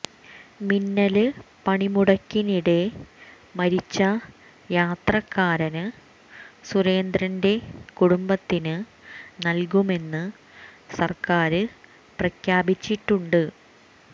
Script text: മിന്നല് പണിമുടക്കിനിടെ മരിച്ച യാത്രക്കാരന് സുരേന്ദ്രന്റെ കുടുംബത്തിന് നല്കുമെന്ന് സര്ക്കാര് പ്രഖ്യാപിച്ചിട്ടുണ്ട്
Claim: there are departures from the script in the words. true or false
false